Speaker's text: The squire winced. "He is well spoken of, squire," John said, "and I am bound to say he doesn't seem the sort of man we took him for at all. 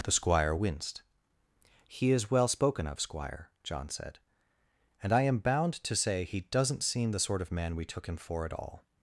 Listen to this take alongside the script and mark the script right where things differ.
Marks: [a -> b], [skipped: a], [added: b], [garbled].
The squire winced. "He is well spoken of, squire," John said, "and I am bound to say he doesn't seem the sort of man we took him for at all.